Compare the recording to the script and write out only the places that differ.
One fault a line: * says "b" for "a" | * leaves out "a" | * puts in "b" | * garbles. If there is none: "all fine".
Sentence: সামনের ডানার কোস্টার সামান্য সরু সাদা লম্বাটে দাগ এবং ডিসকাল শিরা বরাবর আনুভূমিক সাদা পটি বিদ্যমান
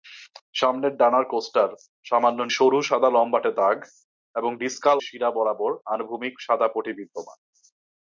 all fine